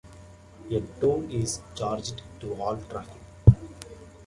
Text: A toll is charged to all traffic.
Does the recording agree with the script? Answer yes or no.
yes